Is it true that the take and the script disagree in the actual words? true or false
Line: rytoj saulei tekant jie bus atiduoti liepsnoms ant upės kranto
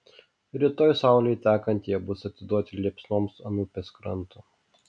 false